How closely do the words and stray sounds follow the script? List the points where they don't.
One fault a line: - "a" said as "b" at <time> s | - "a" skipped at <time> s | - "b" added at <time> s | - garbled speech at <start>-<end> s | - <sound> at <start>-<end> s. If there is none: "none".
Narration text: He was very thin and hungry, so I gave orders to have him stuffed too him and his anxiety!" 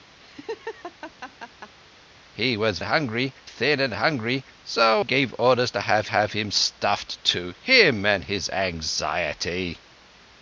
- laugh at 0.2-1.7 s
- "very" said as "hungry" at 2.8 s
- "I" skipped at 5.0 s
- "have" added at 6.1 s